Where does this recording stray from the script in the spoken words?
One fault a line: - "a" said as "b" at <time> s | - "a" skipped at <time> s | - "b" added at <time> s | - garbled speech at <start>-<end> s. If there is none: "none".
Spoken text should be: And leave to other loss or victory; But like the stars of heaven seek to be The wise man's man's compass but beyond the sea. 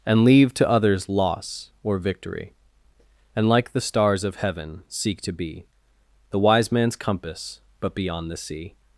- "other" said as "others" at 0.7 s
- "But" said as "And" at 3.3 s
- "man's" skipped at 6.9 s